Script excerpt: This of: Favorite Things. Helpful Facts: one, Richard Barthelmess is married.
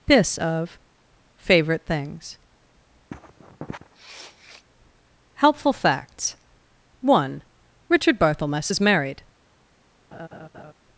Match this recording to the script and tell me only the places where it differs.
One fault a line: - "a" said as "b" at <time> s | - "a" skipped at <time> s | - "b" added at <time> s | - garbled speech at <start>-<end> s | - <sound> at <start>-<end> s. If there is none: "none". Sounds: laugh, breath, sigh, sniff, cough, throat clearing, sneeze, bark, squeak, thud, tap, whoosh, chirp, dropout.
- sniff at 3.1-4.6 s
- laugh at 10.1-10.7 s